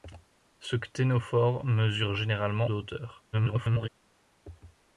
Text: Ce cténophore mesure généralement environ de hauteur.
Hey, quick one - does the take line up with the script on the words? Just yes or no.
no